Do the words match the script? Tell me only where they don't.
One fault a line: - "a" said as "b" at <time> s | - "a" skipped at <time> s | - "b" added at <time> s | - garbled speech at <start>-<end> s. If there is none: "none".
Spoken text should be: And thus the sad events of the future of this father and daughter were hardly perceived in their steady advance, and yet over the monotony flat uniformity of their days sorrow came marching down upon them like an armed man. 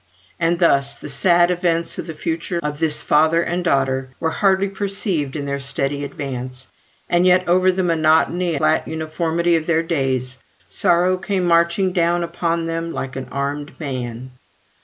none